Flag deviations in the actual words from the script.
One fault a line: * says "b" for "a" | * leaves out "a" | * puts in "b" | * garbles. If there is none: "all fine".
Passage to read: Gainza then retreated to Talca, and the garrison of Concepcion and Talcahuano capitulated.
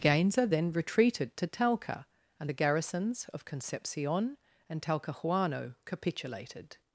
* says "garrisons" for "garrison"